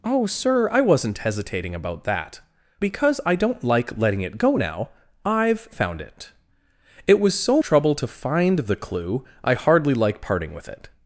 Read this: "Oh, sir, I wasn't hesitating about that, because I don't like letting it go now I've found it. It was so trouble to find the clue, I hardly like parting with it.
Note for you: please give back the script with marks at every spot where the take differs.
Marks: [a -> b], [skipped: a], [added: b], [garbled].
"Oh, sir, I wasn't hesitating about that, because I don't like letting it go now I've found it. It was so trouble to find the clue, I hardly like parting with it.